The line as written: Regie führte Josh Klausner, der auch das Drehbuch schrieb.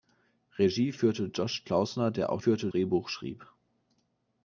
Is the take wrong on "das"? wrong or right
wrong